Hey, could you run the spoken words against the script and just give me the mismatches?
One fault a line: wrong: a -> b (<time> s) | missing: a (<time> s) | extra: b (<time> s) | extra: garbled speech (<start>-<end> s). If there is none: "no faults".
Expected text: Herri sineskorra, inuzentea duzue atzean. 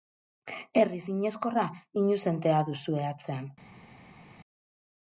no faults